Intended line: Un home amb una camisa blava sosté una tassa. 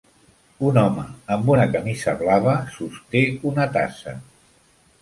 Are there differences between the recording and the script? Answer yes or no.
no